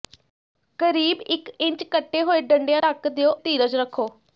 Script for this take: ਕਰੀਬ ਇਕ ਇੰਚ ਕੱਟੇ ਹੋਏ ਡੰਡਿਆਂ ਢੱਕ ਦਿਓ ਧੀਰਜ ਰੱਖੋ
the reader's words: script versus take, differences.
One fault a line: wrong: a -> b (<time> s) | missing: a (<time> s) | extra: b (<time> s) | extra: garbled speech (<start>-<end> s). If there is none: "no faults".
no faults